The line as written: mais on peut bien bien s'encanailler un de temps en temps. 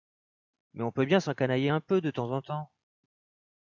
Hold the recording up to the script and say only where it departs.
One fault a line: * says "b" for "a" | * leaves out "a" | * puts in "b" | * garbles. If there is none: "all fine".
* leaves out "bien"
* puts in "peu"